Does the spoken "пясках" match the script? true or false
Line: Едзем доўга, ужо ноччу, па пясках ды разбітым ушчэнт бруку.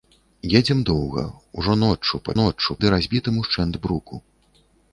false